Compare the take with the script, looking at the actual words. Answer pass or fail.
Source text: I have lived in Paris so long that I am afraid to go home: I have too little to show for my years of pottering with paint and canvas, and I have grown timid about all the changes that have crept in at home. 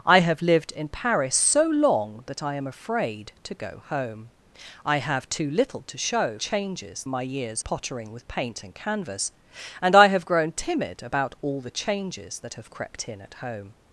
fail